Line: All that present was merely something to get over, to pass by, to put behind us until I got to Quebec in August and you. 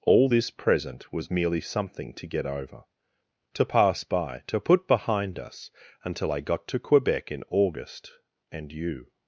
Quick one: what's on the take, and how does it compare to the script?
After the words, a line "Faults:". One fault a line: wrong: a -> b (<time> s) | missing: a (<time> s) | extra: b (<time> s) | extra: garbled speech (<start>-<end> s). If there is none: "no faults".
All this present was merely something to get over, to pass by, to put behind us until I got to Quebec in August and you.
Faults:
wrong: that -> this (0.3 s)